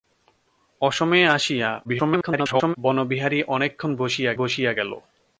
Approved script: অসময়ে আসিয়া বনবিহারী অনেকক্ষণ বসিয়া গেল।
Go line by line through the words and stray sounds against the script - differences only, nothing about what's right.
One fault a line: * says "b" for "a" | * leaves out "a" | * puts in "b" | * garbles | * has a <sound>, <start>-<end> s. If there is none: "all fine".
* garbles
* puts in "বসিয়া"